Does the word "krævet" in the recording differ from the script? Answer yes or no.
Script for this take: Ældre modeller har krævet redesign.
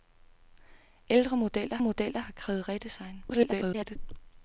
no